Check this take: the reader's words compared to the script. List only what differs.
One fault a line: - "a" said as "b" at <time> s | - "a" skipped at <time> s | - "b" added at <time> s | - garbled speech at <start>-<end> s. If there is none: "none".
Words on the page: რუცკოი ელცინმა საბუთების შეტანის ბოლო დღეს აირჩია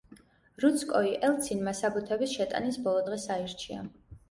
none